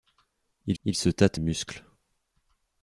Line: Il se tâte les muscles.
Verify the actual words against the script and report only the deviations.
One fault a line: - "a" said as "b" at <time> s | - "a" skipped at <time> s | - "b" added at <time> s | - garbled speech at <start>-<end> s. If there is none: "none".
- "il" added at 0.8 s
- "les" skipped at 1.4 s